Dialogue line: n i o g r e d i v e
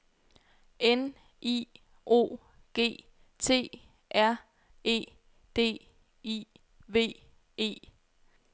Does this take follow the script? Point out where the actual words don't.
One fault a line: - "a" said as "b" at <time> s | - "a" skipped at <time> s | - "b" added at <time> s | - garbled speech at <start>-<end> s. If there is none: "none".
- "t" added at 3.4 s